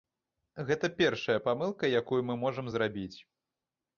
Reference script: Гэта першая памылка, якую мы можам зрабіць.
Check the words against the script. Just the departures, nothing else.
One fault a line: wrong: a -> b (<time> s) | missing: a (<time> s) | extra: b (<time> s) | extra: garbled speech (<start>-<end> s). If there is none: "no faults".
no faults